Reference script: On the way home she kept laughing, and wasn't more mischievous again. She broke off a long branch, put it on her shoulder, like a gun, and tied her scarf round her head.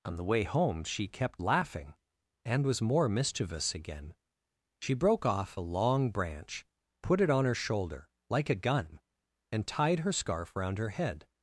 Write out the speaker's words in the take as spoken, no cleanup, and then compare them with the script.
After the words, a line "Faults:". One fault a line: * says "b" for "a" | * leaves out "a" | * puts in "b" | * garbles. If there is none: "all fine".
On the way home she kept laughing, and was more mischievous again. She broke off a long branch, put it on her shoulder, like a gun, and tied her scarf round her head.
Faults:
* says "was" for "wasn't"